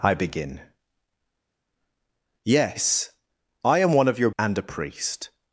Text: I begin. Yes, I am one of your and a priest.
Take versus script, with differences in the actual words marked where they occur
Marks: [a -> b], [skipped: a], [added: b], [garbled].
I begin. Yes, I am one of your and a priest.